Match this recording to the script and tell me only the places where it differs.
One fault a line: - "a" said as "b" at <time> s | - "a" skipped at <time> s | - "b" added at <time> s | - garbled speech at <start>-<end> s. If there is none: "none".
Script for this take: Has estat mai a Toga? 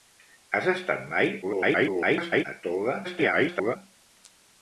- garbled speech at 1.4-2.4 s
- garbled speech at 3.0-3.8 s